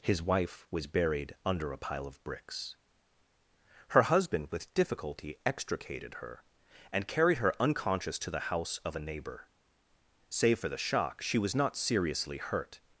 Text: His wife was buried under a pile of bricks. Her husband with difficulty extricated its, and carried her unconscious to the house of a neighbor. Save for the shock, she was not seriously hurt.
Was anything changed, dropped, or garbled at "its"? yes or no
yes